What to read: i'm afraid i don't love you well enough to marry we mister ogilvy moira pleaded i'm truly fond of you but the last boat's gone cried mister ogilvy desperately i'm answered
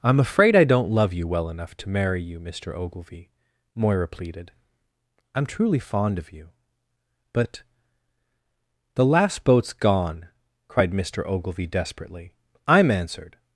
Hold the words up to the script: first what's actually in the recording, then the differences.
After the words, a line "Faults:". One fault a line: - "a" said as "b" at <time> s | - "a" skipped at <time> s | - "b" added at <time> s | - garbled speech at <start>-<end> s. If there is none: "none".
i'm afraid i don't love you well enough to marry you mister ogilvy moira pleaded i'm truly fond of you but the last boat's gone cried mister ogilvy desperately i'm answered
Faults:
- "we" said as "you" at 2.2 s